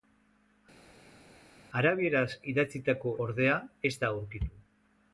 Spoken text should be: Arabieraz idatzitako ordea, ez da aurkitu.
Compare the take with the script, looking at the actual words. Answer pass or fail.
pass